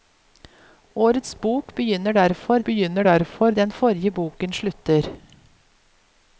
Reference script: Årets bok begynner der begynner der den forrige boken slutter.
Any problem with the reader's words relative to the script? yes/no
no